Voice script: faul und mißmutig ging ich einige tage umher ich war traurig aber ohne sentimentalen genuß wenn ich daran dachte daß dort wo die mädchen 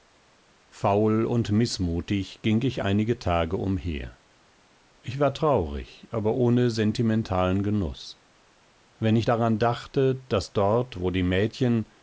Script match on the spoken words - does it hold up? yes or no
yes